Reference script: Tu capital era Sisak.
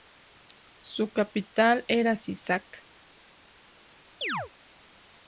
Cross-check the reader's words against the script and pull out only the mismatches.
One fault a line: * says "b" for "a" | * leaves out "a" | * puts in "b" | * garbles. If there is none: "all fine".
* says "Su" for "Tu"